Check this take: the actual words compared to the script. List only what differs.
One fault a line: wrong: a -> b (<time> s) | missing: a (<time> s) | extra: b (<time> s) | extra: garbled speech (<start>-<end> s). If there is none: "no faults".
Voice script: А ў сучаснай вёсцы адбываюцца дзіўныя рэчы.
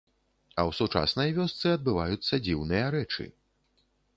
no faults